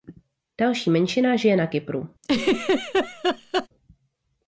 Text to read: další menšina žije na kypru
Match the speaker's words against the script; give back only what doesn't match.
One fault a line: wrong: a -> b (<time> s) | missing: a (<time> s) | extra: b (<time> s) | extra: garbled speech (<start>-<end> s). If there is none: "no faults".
no faults